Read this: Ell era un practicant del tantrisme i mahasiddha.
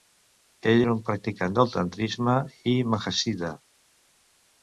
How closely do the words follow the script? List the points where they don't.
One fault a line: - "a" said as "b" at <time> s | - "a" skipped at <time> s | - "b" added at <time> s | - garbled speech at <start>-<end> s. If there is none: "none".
none